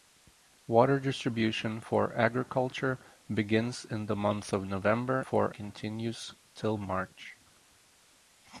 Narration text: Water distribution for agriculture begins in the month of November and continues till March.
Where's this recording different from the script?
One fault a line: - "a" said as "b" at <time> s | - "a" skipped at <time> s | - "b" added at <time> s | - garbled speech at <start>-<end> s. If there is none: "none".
- "and" said as "for" at 5.2 s